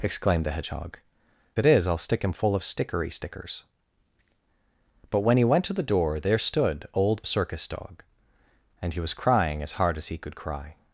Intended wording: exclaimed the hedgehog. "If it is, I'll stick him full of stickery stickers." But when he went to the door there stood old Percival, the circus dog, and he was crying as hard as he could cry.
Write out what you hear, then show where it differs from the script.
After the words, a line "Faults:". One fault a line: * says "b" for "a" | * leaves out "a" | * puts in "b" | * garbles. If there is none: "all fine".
exclaimed the hedgehog. "It is, I'll stick him full of stickery stickers." But when he went to the door there stood old Circus dog, and he was crying as hard as he could cry.
Faults:
* leaves out "If"
* leaves out "Percival the"